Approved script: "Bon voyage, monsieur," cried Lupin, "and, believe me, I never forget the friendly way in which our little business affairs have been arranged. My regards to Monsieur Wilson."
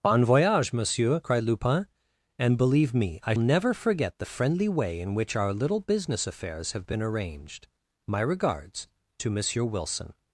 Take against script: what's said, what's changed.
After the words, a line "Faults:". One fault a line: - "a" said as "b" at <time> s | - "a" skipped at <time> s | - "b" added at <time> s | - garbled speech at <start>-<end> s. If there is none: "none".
"Bon voyage, monsieur," cried Lupin, "and, believe me, I never forget the friendly way in which our little business affairs have been arranged. My regards to Monsieur Wilson."
Faults:
none